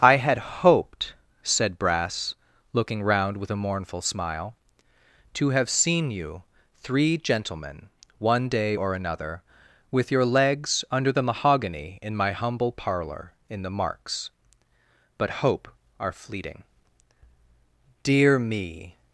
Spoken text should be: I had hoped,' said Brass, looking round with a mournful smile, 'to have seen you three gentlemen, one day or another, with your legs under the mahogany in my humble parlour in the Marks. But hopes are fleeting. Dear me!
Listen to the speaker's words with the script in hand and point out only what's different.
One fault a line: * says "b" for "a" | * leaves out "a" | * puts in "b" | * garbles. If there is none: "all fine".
* says "hope" for "hopes"